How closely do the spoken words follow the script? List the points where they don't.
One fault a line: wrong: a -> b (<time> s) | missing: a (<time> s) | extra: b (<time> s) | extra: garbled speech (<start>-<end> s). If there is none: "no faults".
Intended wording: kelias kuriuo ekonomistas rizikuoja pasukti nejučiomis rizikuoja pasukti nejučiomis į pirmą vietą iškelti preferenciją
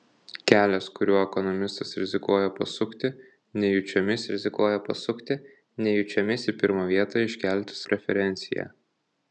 no faults